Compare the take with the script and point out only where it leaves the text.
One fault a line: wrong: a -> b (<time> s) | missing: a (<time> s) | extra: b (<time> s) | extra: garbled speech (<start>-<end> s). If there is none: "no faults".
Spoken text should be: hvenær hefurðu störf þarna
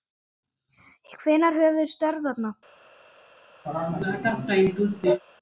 no faults